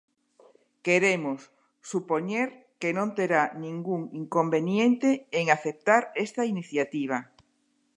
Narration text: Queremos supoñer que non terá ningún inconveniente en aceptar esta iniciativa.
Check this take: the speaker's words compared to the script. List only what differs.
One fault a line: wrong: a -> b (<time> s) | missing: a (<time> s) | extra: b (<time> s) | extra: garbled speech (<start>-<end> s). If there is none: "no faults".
no faults